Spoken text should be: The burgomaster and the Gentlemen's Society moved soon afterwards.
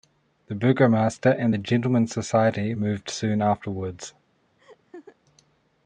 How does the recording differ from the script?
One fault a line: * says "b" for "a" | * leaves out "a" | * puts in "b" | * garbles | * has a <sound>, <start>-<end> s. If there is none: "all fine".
* has a laugh, 4.6-5.2 s